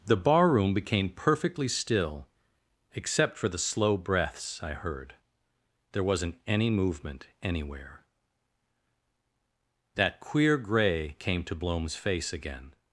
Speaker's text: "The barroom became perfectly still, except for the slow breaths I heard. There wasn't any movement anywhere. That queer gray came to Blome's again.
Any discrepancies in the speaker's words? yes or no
yes